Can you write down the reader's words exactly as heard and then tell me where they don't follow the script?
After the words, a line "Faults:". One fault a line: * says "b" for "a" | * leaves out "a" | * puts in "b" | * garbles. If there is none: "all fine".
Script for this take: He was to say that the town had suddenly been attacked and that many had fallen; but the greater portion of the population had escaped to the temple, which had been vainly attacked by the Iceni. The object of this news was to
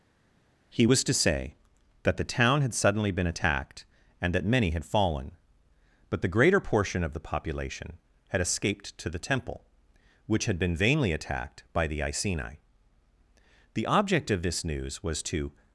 He was to say that the town had suddenly been attacked and that many had fallen; but the greater portion of the population had escaped to the temple, which had been vainly attacked by the Iceni. The object of this news was to
Faults:
all fine